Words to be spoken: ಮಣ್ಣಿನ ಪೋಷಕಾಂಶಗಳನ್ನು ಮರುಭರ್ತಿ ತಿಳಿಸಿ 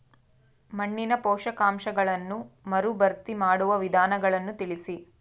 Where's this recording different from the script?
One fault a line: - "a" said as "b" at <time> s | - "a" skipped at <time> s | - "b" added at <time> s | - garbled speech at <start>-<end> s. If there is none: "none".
- "ಮಾಡುವ ವಿಧಾನಗಳನ್ನು" added at 3.3 s